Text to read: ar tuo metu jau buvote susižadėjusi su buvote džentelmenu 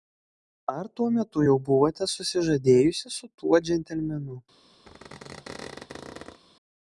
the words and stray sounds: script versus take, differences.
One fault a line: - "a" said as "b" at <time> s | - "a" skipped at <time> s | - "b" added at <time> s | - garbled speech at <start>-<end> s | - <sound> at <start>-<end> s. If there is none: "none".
- "buvote" said as "tuo" at 3.4 s
- squeak at 4.9-6.4 s